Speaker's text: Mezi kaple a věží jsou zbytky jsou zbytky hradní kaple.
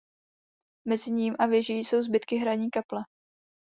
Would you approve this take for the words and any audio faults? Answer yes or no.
no